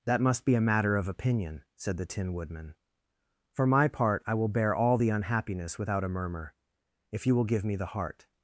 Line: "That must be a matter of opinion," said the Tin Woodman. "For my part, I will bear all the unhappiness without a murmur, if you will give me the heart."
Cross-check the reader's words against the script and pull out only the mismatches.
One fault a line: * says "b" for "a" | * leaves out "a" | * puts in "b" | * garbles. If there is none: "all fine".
all fine